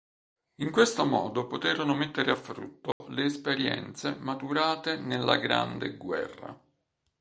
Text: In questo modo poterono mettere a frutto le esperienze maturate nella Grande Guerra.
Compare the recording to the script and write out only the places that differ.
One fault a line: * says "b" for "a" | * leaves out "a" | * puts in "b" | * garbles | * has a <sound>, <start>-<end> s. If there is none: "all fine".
* has a dropout, 2.9-3.0 s